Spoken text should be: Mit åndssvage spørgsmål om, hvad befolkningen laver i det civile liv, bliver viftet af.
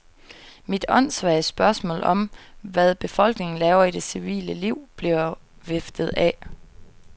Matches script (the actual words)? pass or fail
pass